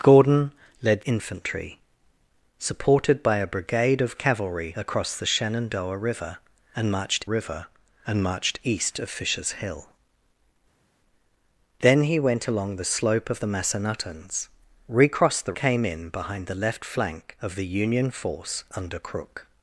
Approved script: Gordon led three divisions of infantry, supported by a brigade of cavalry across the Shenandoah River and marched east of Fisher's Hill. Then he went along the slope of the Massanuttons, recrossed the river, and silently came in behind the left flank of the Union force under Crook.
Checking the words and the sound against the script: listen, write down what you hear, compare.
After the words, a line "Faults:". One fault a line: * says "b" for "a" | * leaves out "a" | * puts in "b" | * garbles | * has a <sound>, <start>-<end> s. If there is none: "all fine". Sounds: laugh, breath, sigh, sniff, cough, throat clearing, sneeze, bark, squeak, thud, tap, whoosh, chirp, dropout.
Gordon led infantry, supported by a brigade of cavalry across the Shenandoah River and marched River and marched east of Fisher's Hill. Then he went along the slope of the Massanuttons, recrossed the came in behind the left flank of the Union force under Crook.
Faults:
* leaves out "three divisions of"
* puts in "River and marched"
* leaves out "river and silently"